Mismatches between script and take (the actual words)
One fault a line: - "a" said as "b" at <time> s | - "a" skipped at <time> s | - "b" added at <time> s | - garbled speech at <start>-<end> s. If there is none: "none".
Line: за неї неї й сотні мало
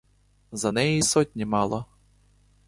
- "неї" skipped at 1.0 s